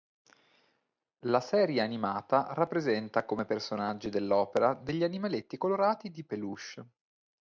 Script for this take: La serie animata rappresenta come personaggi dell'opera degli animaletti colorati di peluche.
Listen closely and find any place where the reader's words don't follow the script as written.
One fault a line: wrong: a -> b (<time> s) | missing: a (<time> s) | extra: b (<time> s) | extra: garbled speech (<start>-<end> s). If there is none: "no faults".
no faults